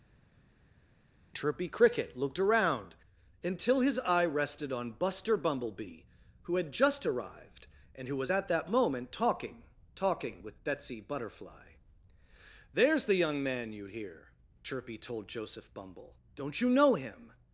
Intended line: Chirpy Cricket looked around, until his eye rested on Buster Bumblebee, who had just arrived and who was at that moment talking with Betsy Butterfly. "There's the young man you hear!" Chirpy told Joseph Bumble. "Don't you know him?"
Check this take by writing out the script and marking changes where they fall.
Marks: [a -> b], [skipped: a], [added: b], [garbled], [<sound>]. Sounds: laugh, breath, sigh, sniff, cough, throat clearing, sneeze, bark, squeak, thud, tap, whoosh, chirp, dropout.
Chirpy Cricket looked around, until his eye rested on Buster Bumblebee, who had just arrived and who was at that moment talking [added: talking] with Betsy Butterfly. "There's the young man you hear!" Chirpy told Joseph Bumble. "Don't you know him?"